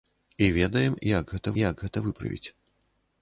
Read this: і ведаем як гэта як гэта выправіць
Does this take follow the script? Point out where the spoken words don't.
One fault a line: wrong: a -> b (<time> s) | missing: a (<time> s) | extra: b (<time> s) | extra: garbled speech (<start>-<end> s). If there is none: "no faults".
no faults